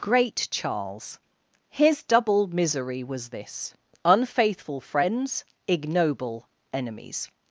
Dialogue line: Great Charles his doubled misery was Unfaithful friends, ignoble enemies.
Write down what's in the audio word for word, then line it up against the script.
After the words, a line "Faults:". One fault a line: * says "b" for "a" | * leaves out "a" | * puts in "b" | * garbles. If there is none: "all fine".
Great Charles his double misery was this, Unfaithful friends, ignoble enemies.
Faults:
* says "double" for "doubled"
* puts in "this"